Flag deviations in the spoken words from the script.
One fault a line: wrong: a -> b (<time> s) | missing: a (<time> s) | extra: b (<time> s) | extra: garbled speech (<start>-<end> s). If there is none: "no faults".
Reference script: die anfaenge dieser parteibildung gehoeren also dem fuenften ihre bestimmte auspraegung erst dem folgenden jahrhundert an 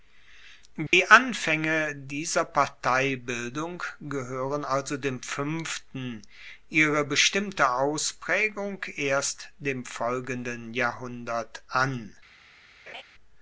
no faults